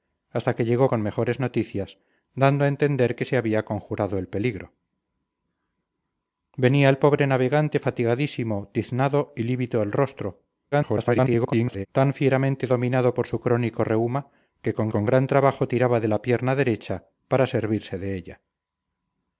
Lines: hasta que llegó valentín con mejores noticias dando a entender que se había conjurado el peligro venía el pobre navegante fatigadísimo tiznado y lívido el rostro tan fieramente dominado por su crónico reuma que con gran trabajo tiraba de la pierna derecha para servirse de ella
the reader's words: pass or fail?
fail